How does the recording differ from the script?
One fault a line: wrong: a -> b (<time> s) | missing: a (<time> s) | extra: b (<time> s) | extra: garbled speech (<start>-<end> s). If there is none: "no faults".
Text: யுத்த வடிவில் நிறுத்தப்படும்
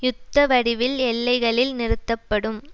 extra: எல்லைகளில் (1.1 s)